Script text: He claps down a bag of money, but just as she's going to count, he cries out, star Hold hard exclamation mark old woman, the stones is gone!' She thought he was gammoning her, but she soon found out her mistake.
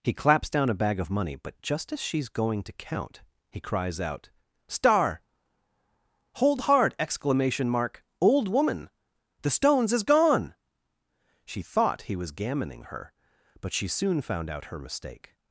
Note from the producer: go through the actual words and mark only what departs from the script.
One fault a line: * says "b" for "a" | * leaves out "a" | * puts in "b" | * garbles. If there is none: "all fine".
all fine